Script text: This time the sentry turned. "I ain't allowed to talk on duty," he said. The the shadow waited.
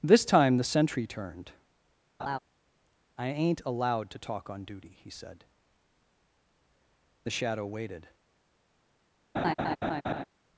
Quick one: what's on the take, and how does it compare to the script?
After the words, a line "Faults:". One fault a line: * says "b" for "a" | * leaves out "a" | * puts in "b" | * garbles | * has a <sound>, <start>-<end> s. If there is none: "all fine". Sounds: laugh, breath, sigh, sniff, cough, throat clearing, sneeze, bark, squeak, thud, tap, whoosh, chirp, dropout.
This time the sentry turned. "I ain't allowed to talk on duty," he said. The the shadow waited.
Faults:
* has a laugh, 2.2-2.4 s
* has a laugh, 9.3-10.2 s